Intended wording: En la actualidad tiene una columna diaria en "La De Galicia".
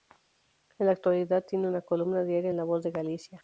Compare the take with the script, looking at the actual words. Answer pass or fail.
fail